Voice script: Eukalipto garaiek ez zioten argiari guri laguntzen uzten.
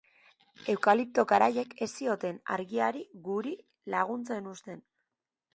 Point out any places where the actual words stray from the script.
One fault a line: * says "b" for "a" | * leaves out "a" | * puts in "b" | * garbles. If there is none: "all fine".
all fine